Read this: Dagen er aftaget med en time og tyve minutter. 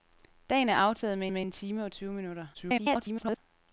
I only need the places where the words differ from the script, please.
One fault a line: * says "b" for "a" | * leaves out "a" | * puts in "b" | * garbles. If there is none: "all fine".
* puts in "med"
* garbles